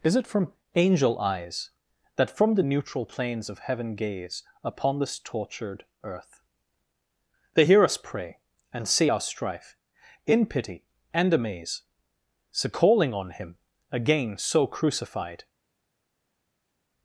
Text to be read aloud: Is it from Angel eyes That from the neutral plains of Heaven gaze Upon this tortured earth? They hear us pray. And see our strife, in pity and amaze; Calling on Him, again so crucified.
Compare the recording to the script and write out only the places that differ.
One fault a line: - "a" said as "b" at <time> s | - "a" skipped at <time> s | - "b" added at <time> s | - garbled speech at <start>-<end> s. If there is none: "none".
- "so" added at 12.5 s